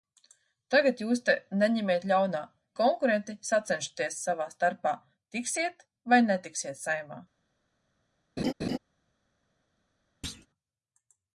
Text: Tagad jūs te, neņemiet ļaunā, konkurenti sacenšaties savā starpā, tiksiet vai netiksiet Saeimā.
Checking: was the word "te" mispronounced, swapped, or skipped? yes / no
no